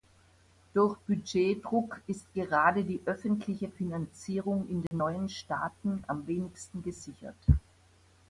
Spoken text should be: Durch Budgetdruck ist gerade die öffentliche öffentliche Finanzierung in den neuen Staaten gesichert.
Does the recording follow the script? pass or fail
fail